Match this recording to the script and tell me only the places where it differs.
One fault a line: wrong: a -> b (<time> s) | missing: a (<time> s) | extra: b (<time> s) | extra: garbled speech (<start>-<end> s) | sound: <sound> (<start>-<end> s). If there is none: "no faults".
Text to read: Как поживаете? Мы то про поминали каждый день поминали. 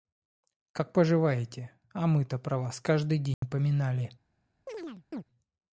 extra: А (1.9 s)
wrong: поминали -> вас (2.6 s)
sound: dropout (3.3-3.4 s)
sound: chirp (4.7-5.2 s)